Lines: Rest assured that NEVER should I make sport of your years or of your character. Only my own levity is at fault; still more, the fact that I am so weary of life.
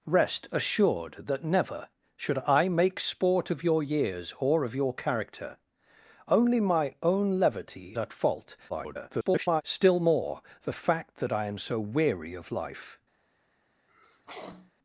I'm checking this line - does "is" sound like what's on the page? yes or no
no